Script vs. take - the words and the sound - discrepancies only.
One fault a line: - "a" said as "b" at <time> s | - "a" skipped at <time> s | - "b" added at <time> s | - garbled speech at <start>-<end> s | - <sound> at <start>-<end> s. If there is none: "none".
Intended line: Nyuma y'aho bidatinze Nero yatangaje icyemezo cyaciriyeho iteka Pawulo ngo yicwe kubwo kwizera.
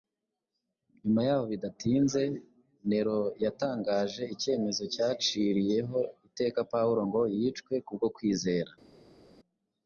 none